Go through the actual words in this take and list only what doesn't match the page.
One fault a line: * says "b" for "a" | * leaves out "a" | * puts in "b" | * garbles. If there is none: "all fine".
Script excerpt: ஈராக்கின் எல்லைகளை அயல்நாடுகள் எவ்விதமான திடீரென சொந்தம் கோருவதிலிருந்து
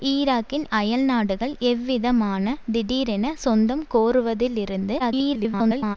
* leaves out "எல்லைகளை"
* garbles